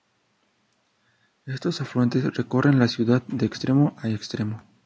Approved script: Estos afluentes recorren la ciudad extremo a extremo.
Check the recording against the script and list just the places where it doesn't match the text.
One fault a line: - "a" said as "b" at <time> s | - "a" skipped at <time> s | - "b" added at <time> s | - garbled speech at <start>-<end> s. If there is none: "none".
- "de" added at 3.3 s